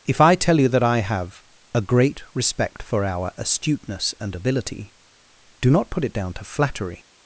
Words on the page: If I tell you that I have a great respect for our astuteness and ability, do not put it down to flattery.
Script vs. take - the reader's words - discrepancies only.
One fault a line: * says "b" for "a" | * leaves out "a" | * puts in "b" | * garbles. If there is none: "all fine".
all fine